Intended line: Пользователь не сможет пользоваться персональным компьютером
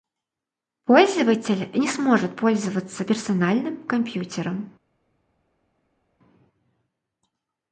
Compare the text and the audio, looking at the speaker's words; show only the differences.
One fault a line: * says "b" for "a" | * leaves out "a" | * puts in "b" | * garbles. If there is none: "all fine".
all fine